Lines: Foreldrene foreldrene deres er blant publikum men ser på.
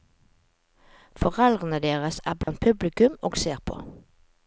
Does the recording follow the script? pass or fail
fail